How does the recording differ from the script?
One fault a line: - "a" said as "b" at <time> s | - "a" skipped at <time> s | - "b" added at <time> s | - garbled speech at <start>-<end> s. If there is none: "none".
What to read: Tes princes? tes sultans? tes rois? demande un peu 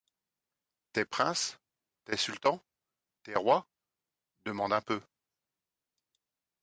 none